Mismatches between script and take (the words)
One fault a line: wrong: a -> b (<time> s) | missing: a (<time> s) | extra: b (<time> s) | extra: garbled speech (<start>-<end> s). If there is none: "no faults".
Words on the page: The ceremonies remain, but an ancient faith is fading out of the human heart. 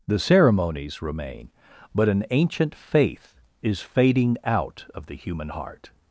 no faults